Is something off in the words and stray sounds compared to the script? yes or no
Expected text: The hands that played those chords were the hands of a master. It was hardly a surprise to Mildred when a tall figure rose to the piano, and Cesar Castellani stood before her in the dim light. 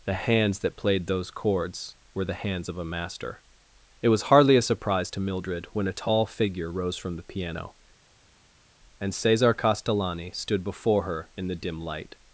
yes